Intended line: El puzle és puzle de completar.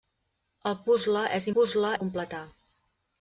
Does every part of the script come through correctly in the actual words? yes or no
yes